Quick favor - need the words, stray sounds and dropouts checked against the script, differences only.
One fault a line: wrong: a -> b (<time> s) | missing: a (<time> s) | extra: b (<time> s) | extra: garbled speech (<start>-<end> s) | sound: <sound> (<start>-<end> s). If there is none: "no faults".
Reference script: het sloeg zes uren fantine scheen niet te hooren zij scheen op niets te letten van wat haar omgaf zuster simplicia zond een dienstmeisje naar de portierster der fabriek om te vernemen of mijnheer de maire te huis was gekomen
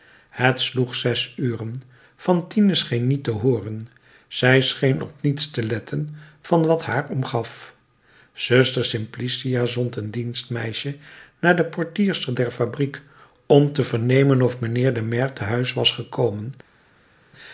no faults